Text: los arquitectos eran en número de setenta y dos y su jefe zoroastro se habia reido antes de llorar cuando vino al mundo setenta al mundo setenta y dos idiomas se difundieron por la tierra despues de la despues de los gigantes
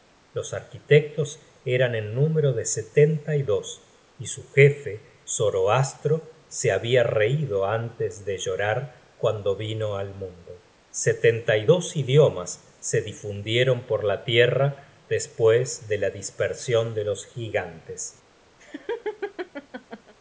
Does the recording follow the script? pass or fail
fail